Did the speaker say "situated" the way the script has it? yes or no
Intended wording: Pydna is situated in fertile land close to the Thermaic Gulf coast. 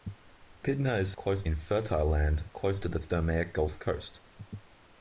no